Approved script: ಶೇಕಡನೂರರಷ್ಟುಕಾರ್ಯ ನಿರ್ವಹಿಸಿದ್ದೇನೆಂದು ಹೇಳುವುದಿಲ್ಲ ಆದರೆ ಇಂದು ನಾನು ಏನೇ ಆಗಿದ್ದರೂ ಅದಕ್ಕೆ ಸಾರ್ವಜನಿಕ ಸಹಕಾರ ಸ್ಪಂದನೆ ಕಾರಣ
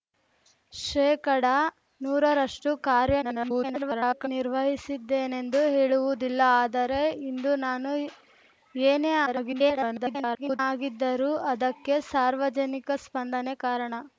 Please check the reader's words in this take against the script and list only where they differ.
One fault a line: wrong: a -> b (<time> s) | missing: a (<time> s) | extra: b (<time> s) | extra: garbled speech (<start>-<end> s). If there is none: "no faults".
extra: garbled speech (3.2-4.3 s)
extra: garbled speech (9.3-10.6 s)
missing: ಸಹಕಾರ (12.9 s)